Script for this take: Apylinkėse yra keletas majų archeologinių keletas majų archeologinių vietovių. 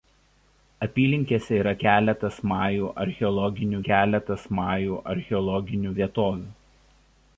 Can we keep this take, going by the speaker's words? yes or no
yes